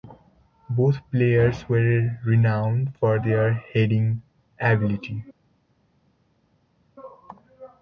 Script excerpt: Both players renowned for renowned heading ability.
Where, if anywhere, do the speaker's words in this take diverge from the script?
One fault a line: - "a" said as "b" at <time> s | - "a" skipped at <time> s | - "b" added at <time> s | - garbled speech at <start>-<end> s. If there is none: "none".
- "were" added at 1.7 s
- "renowned" said as "their" at 3.2 s